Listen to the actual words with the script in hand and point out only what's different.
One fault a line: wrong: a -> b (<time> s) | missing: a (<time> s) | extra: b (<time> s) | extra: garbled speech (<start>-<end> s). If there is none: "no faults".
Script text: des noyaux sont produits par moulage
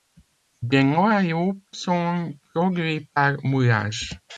no faults